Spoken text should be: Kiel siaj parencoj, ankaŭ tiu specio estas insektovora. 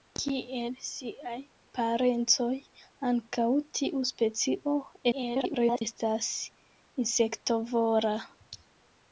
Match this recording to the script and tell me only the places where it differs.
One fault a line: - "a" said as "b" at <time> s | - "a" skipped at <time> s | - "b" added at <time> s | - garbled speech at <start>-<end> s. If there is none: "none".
- garbled speech at 5.1-5.8 s